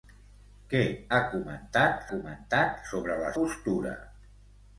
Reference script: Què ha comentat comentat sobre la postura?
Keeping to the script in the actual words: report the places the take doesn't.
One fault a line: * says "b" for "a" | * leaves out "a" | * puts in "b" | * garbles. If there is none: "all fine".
all fine